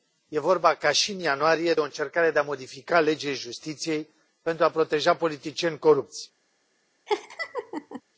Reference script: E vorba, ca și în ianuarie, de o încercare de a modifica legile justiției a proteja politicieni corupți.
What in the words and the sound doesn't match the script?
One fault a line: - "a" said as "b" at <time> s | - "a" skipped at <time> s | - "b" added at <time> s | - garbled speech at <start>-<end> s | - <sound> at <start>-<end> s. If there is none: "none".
- "pentru" added at 4.4 s
- laugh at 7.1-8.0 s